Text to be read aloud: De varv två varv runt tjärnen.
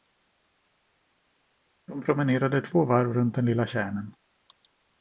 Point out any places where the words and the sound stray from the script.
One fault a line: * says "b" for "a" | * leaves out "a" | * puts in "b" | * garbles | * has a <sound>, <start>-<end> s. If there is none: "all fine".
* says "promenerade" for "varv"
* puts in "den lilla"